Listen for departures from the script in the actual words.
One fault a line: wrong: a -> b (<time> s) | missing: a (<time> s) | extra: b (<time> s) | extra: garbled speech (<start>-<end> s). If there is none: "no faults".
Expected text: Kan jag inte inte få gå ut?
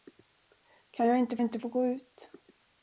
no faults